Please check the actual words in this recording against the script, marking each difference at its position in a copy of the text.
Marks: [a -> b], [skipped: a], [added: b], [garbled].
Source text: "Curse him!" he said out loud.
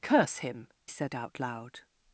"Curse him!" [skipped: he] said out loud.